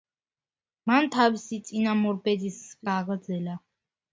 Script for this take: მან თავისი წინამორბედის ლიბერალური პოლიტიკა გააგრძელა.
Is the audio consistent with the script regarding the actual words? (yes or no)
no